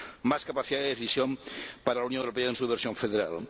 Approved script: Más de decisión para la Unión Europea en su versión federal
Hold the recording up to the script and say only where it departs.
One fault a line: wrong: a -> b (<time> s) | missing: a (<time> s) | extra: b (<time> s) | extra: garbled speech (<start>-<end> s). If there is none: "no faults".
extra: capacidad (0.5 s)